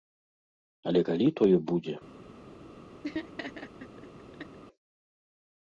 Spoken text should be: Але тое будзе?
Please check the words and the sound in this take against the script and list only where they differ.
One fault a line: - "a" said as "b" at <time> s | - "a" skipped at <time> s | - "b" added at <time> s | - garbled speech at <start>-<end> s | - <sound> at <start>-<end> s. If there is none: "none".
- "калі" added at 1.1 s
- laugh at 3.0-4.6 s